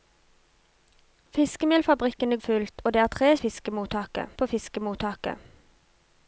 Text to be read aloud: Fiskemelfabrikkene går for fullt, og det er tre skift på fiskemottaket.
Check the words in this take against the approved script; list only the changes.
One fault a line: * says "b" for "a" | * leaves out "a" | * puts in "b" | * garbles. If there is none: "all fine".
* leaves out "går for"
* says "fiskemottaket" for "skift"